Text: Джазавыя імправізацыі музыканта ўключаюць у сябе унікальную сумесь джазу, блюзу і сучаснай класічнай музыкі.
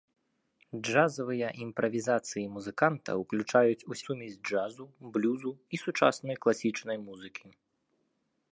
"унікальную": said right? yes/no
no